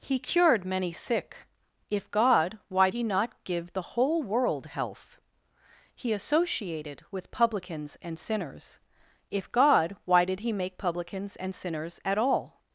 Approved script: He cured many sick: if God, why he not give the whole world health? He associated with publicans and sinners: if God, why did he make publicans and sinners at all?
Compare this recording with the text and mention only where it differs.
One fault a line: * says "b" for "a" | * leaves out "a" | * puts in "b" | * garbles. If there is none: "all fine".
all fine